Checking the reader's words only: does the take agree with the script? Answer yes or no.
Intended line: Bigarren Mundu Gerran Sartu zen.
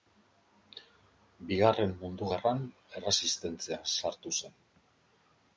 no